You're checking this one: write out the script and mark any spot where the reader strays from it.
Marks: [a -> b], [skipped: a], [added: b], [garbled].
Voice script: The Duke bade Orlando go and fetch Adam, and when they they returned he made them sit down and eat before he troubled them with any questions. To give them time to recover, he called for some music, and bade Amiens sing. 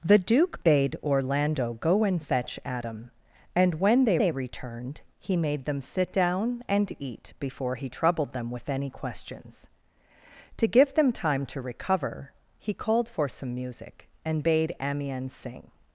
The Duke bade Orlando go and fetch Adam, and when they they returned he made them sit down and eat before he troubled them with any questions. To give them time to recover, he called for some music, and bade Amiens sing.